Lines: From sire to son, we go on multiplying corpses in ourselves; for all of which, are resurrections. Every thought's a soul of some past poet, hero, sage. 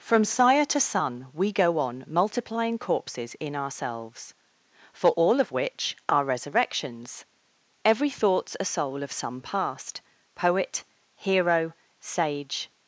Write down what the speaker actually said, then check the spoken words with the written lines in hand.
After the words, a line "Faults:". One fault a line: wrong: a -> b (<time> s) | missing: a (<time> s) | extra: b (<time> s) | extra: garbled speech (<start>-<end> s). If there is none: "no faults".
From sire to son, we go on multiplying corpses in ourselves; for all of which, are resurrections. Every thought's a soul of some past poet, hero, sage.
Faults:
no faults